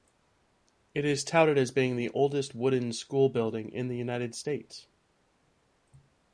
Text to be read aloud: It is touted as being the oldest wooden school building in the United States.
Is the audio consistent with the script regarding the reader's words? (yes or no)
yes